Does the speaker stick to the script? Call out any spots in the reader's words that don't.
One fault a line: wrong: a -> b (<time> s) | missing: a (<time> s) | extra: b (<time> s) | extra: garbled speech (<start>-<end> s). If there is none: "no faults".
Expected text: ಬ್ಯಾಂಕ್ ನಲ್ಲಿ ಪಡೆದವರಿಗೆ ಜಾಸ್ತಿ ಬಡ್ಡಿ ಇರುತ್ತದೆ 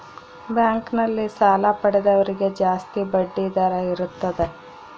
extra: ಸಾಲ (1.4 s)
extra: ದರ (3.6 s)